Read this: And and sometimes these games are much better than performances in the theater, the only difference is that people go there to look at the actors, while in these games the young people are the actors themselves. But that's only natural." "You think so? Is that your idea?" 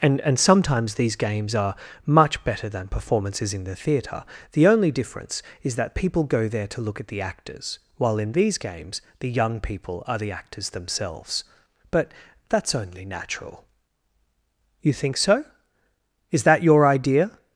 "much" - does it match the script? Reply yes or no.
yes